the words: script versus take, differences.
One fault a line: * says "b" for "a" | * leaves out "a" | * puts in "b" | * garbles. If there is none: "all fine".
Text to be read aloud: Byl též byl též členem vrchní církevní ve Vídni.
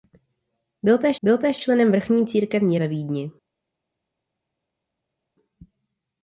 all fine